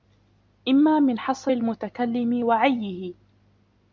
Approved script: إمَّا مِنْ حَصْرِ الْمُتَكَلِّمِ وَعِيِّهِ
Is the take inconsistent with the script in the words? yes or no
no